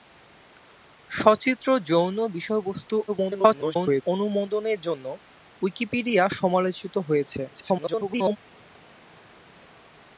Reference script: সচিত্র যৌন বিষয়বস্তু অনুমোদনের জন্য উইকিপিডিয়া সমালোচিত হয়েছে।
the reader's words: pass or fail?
fail